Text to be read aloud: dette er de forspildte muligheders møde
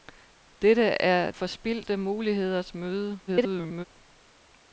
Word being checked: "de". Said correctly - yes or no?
no